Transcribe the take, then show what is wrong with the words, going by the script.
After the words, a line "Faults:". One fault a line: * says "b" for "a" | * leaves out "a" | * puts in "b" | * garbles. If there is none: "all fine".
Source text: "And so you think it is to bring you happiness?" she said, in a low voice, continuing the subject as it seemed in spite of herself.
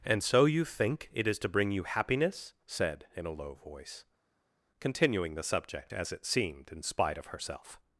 "And so you think it is to bring you happiness?" said, in a low voice, continuing the subject as it seemed in spite of herself.
Faults:
* leaves out "she"